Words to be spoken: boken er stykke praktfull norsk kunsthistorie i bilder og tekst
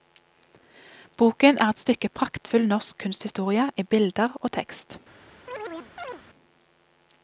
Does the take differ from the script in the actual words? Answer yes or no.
yes